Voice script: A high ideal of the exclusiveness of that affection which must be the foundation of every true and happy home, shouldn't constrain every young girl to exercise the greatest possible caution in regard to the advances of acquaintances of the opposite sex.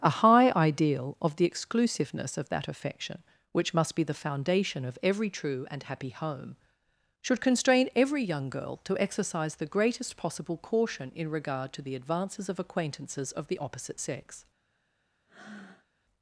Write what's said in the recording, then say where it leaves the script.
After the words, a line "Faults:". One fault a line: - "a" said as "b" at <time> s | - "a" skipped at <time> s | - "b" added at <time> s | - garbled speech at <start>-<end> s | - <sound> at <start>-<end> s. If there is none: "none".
A high ideal of the exclusiveness of that affection which must be the foundation of every true and happy home, should constrain every young girl to exercise the greatest possible caution in regard to the advances of acquaintances of the opposite sex.
Faults:
- "shouldn't" said as "should" at 7.2 s
- breath at 15.3-15.9 s